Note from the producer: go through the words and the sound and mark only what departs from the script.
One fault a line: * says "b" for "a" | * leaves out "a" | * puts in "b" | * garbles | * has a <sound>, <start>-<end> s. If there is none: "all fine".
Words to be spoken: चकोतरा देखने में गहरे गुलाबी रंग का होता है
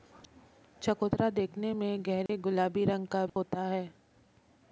* has a dropout, 2.3-2.3 s
* has a dropout, 3.3-3.4 s